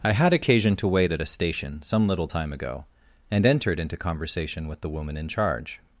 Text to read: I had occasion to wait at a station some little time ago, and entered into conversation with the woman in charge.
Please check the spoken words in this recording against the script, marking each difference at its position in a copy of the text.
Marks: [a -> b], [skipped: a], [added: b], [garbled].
I had occasion to wait at a station some little time ago, and entered into conversation with the woman in charge.